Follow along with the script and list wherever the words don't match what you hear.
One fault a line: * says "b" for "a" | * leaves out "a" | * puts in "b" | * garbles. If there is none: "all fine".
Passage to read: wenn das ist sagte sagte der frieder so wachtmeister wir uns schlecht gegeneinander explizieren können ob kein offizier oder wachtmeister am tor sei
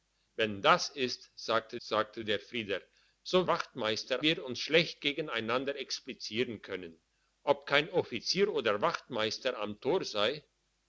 all fine